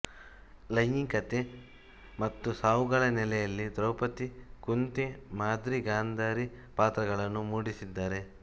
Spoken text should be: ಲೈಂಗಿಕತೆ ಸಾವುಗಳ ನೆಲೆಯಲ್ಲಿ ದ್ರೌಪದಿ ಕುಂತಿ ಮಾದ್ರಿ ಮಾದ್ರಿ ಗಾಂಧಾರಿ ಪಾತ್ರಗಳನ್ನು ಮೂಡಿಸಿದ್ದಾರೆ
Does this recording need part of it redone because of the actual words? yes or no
yes